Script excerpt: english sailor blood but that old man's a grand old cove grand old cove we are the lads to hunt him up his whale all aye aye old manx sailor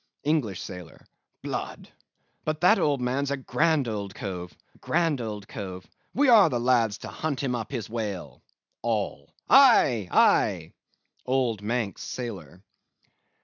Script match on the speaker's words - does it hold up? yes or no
yes